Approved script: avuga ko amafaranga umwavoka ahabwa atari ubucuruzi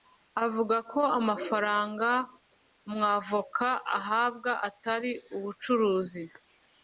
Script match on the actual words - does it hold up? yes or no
yes